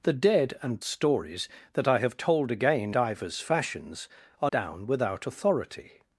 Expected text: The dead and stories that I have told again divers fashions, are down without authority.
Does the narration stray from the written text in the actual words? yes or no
no